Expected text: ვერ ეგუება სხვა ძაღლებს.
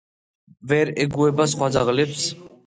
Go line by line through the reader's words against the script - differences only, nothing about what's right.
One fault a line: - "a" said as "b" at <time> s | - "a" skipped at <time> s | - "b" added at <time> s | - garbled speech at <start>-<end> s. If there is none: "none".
none